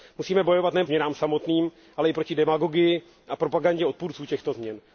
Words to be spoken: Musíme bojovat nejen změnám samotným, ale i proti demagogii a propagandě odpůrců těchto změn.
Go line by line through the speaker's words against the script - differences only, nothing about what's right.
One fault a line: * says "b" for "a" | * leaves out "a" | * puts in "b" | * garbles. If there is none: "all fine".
all fine